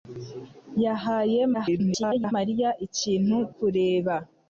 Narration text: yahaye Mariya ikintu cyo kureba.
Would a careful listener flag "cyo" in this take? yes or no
yes